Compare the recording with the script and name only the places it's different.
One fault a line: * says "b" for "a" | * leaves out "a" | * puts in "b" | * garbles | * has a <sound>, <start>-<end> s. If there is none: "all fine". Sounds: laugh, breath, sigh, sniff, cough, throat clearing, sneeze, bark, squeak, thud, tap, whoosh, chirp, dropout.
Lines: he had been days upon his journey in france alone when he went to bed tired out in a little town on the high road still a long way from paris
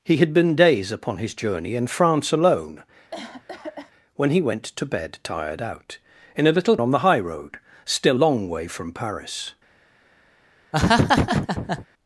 * has a cough, 3.1-3.9 s
* leaves out "town"
* leaves out "a"
* has a laugh, 10.7-11.9 s